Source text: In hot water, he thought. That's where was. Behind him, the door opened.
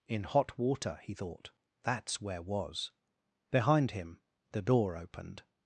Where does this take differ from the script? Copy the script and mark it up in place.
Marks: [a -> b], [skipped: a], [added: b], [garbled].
In hot water, he thought. That's where was. Behind him, the door opened.